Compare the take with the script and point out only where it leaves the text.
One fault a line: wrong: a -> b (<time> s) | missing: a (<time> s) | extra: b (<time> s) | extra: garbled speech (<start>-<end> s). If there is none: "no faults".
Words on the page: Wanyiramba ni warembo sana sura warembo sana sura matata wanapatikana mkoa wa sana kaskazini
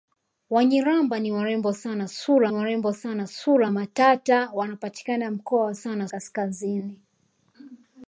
no faults